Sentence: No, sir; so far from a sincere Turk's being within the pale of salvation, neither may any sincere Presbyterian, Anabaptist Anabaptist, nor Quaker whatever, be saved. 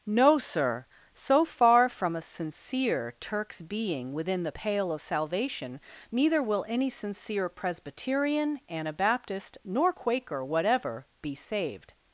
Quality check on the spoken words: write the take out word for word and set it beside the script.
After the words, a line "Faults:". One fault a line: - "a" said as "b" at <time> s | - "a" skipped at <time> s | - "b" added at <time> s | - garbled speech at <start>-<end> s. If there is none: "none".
No, sir; so far from a sincere Turk's being within the pale of salvation, neither will any sincere Presbyterian, Anabaptist, nor Quaker whatever, be saved.
Faults:
- "may" said as "will" at 6.4 s
- "Anabaptist" skipped at 9.6 s